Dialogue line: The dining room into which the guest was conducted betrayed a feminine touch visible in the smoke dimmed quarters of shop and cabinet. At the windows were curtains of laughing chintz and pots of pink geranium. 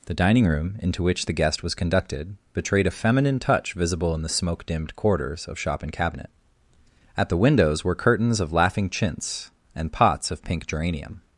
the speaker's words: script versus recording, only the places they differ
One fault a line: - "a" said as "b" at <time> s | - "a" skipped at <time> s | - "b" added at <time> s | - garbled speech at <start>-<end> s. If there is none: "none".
none